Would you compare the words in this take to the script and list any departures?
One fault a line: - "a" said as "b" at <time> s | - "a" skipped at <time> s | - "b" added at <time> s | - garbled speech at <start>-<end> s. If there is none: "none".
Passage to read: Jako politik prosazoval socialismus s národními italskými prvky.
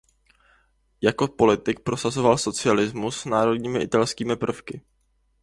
none